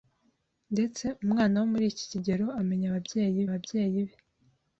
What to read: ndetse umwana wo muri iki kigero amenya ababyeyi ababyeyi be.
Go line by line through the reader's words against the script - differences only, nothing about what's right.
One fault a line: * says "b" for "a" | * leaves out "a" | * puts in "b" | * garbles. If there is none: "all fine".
all fine